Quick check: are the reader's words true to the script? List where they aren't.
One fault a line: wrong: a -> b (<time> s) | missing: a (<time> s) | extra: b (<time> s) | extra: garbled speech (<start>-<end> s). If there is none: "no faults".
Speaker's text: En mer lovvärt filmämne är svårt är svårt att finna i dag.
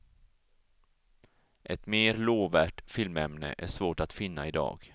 wrong: En -> Ett (1.6 s)
missing: är svårt (4.0 s)